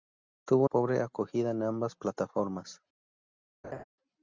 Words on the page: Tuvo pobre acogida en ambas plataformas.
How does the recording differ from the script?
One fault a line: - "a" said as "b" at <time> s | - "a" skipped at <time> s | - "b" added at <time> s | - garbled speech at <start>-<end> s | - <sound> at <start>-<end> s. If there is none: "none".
- laugh at 3.6-3.8 s